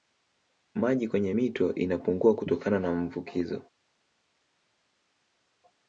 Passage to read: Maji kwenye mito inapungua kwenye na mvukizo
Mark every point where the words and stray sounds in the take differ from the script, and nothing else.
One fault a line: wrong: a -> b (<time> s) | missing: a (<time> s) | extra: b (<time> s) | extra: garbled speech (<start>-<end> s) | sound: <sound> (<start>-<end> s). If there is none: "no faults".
wrong: kwenye -> kutokana (2.3 s)